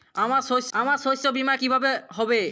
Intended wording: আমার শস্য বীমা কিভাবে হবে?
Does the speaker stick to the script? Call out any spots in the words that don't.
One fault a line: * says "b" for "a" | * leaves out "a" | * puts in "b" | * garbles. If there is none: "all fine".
* puts in "আমার শস্য"